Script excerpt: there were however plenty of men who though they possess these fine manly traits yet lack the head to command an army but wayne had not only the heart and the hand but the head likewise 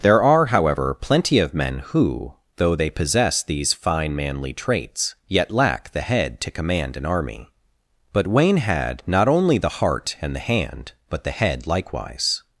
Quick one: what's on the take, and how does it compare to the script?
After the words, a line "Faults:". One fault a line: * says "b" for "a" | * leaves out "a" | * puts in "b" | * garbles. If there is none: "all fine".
there are however plenty of men who though they possess these fine manly traits yet lack the head to command an army but wayne had not only the heart and the hand but the head likewise
Faults:
* says "are" for "were"